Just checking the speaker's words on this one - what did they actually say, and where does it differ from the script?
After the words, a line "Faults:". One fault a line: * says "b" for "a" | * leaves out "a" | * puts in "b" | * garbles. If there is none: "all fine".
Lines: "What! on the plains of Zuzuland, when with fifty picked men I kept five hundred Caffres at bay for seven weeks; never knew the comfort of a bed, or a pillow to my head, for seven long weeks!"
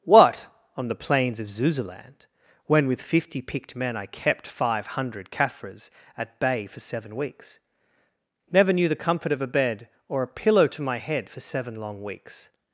"What! on the plains of Zuzuland, when with fifty picked men I kept five hundred Caffres at bay for seven weeks; never knew the comfort of a bed, or a pillow to my head, for seven long weeks!"
Faults:
all fine